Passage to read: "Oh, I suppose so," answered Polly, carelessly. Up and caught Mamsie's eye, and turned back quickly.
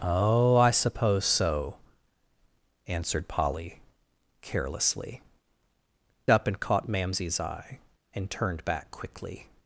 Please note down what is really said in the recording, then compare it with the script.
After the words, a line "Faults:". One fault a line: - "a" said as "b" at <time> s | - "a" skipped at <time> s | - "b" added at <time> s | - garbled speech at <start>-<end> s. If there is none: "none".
"Oh, I suppose so," answered Polly, carelessly. Up and caught Mamsie's eye, and turned back quickly.
Faults:
none